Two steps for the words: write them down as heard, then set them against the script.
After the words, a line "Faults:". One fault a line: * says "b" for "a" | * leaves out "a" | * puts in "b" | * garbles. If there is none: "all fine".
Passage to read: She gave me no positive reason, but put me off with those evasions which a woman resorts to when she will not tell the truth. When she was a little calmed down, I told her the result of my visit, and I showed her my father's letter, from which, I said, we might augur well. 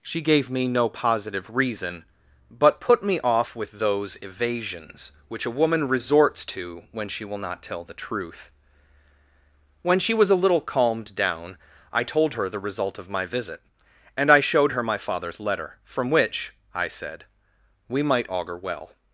She gave me no positive reason, but put me off with those evasions which a woman resorts to when she will not tell the truth. When she was a little calmed down, I told her the result of my visit, and I showed her my father's letter, from which, I said, we might augur well.
Faults:
all fine